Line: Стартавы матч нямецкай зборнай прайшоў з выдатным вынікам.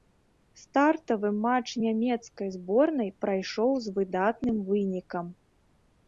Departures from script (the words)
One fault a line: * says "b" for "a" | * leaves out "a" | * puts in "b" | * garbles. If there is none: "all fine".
all fine